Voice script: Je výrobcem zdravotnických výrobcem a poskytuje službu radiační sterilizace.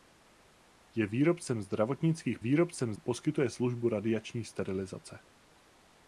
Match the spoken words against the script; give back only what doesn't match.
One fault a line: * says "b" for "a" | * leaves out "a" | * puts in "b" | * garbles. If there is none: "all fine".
all fine